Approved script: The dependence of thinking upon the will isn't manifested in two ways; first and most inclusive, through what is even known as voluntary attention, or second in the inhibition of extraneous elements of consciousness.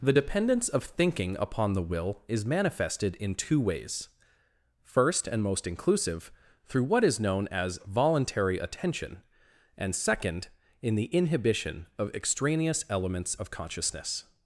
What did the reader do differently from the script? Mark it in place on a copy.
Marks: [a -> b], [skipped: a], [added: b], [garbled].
The dependence of thinking upon the will [isn't -> is] manifested in two ways; first and most inclusive, through what is [skipped: even] known as voluntary attention, [or -> and] second in the inhibition of extraneous elements of consciousness.